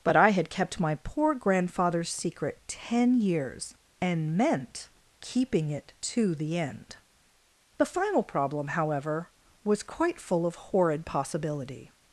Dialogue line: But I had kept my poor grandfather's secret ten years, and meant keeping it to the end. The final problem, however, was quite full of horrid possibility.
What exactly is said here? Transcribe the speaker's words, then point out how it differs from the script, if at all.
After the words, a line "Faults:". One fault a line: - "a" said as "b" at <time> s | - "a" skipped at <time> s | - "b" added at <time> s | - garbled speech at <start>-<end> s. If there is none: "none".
But I had kept my poor grandfather's secret ten years, and meant keeping it to the end. The final problem, however, was quite full of horrid possibility.
Faults:
none